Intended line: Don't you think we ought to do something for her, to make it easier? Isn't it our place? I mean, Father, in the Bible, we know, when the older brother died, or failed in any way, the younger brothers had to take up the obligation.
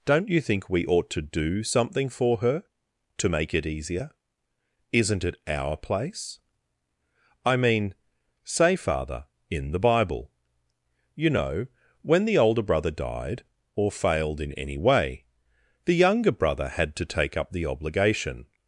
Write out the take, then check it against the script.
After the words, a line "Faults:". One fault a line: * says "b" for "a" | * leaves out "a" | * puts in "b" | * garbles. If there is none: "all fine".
Don't you think we ought to do something for her, to make it easier? Isn't it our place? I mean, say, Father, in the Bible, you know, when the older brother died, or failed in any way, the younger brother had to take up the obligation.
Faults:
* puts in "say"
* says "you" for "we"
* says "brother" for "brothers"